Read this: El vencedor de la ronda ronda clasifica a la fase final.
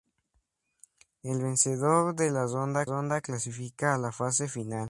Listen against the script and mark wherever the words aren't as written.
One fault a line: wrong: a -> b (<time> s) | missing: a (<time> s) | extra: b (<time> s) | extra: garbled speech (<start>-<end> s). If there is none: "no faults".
no faults